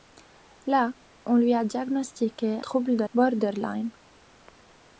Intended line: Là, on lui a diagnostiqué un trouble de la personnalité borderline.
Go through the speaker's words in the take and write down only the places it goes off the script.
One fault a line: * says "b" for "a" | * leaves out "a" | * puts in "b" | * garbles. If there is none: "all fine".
* leaves out "un"
* leaves out "la personnalité"